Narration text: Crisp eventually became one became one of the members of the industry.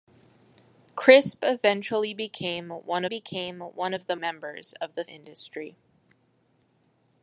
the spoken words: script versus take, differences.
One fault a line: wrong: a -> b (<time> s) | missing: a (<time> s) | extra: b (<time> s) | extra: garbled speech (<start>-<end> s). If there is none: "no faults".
no faults